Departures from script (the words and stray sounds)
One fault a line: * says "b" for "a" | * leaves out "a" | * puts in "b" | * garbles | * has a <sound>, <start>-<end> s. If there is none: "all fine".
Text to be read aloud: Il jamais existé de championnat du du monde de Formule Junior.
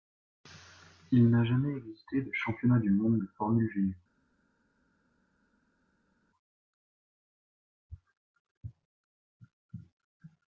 * puts in "n'a"
* leaves out "du"